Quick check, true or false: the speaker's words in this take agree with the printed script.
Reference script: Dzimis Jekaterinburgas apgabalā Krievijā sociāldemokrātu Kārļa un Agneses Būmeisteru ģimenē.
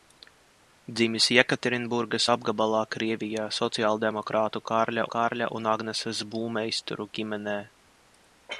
false